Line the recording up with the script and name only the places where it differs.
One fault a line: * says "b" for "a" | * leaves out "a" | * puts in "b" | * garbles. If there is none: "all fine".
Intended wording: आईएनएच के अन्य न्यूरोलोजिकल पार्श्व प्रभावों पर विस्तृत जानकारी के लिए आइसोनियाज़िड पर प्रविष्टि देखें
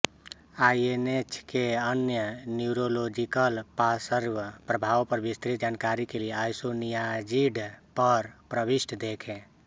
all fine